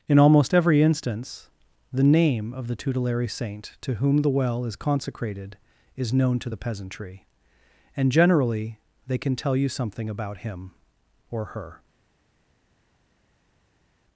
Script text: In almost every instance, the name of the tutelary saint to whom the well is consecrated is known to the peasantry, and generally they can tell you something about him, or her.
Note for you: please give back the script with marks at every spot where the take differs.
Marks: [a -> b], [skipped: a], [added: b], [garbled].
In almost every instance, the name of the tutelary saint to whom the well is consecrated is known to the peasantry, and generally they can tell you something about him, or her.